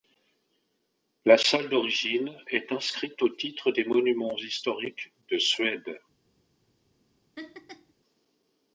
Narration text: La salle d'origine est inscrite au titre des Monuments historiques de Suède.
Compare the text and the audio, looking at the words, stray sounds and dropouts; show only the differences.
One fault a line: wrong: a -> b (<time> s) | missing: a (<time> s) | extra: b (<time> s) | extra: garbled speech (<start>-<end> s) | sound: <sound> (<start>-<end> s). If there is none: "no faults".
sound: laugh (7.3-7.9 s)